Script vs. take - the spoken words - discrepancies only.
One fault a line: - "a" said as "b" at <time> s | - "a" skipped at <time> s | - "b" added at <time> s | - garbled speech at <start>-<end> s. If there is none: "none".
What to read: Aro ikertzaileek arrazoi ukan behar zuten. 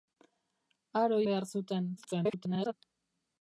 - "ikertzaileek arrazoi ukan" skipped at 1.2 s
- garbled speech at 2.0-2.7 s